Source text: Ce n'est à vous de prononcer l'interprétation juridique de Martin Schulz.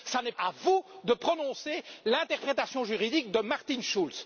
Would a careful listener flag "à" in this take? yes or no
no